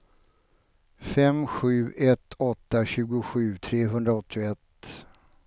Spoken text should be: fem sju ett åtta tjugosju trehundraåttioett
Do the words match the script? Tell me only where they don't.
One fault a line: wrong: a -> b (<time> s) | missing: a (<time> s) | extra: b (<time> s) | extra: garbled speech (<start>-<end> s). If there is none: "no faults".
no faults